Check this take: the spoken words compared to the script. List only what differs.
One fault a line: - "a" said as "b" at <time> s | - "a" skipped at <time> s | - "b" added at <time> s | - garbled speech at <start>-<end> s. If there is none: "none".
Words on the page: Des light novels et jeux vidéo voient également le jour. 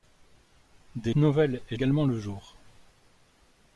- "light" skipped at 1.1 s
- "jeux vidéo voient" skipped at 1.8 s